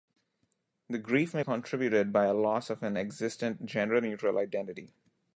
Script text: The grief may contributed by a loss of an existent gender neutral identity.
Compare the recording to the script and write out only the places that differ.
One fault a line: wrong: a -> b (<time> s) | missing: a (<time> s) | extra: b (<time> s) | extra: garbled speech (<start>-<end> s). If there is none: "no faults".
no faults